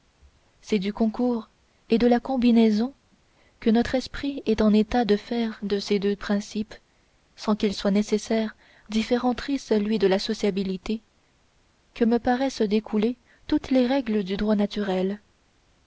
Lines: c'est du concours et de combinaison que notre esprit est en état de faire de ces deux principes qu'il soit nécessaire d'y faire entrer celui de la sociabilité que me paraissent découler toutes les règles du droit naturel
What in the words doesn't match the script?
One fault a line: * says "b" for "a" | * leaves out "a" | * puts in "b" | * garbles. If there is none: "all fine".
* puts in "la"
* puts in "sans"